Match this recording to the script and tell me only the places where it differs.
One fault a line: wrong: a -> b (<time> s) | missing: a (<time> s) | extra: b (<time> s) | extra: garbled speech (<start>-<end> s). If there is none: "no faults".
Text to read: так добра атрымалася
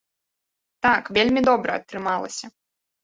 extra: вельмі (1.2 s)